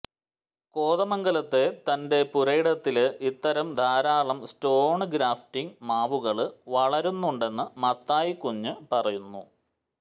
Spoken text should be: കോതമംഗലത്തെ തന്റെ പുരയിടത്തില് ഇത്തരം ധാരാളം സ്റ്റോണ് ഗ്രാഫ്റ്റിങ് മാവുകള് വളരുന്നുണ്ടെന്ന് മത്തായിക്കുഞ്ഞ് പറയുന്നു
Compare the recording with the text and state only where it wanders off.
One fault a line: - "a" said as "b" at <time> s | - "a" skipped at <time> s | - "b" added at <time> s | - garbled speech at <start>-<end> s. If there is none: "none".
none